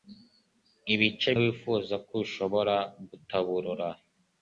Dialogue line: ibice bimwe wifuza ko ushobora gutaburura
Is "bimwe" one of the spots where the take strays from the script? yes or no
yes